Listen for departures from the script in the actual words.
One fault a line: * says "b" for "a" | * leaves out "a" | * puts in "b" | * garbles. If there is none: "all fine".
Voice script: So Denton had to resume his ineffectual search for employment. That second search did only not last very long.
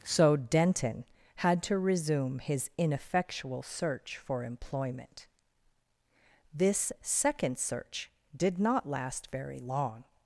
* says "This" for "That"
* leaves out "only"